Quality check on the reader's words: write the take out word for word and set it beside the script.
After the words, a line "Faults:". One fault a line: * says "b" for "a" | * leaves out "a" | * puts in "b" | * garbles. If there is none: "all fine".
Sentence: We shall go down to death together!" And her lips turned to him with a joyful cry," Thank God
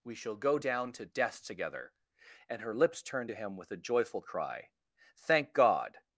We shall go down to death together!" And her lips turned to him with a joyful cry," Thank God
Faults:
all fine